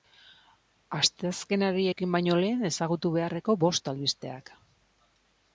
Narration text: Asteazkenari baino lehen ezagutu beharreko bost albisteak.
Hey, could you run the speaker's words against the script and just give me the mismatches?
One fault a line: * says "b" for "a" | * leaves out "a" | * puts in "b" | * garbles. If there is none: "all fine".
* puts in "ekin"